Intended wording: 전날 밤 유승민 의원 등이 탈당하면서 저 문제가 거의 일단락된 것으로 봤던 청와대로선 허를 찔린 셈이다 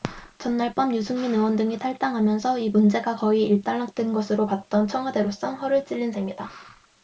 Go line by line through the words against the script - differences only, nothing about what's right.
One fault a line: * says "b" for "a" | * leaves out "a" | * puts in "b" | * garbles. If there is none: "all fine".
* says "이" for "저"